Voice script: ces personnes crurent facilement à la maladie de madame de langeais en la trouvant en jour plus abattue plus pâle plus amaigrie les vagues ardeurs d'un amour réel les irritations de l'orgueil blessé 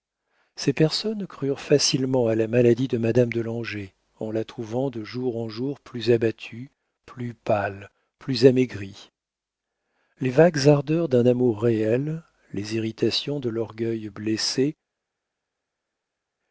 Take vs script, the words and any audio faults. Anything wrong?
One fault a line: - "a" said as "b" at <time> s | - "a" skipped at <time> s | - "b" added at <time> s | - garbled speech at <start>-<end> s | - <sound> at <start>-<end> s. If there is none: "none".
- "de jour" added at 4.9 s